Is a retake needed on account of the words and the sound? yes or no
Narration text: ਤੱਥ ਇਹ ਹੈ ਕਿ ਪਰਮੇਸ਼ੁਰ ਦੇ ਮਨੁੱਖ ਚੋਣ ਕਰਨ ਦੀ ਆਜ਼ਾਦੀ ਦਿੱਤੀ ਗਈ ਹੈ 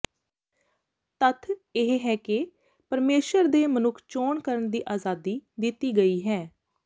no